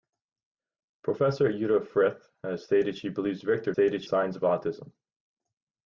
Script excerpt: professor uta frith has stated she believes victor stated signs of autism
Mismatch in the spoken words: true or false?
false